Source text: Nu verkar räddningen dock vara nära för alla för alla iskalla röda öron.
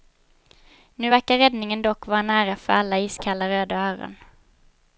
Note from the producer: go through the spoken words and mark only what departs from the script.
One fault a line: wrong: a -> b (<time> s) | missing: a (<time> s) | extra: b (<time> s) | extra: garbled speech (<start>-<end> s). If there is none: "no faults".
missing: för alla (3.0 s)